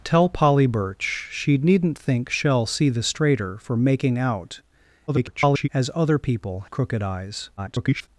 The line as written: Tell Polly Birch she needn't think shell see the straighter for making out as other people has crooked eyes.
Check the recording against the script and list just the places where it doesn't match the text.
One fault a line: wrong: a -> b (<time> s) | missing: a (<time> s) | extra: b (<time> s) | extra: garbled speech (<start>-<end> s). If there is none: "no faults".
extra: garbled speech (5.1-5.7 s)
missing: has (6.6 s)
extra: garbled speech (7.6-8.1 s)